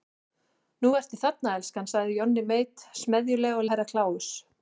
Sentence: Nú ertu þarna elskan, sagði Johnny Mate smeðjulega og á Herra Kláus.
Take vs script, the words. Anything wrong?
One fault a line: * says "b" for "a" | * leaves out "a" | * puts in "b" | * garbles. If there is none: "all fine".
all fine